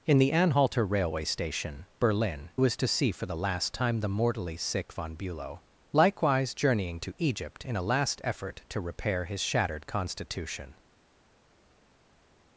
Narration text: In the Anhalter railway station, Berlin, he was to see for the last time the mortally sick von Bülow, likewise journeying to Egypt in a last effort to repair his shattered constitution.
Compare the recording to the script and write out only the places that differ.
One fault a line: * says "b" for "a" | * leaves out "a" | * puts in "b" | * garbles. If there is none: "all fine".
* leaves out "he"